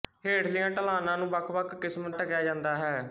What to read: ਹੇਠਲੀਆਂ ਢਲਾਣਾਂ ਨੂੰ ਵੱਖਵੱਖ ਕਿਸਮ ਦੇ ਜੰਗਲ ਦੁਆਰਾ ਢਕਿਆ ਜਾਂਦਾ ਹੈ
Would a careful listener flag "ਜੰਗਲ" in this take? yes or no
yes